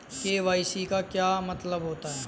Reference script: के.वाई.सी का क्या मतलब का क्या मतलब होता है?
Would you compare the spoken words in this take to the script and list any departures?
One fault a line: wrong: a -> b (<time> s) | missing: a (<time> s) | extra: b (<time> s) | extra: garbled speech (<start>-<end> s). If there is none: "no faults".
missing: का क्या मतलब (1.8 s)